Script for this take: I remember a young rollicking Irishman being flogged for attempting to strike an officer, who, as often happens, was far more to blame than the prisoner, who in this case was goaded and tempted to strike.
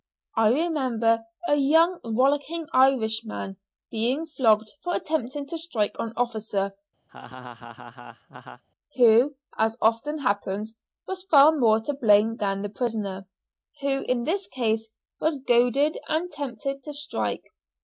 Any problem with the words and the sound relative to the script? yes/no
yes